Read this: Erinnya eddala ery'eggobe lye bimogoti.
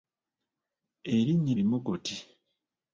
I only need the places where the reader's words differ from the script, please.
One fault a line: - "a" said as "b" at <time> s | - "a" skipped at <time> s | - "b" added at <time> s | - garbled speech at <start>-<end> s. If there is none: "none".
- "eddala ery'eggobe lye" skipped at 1.5 s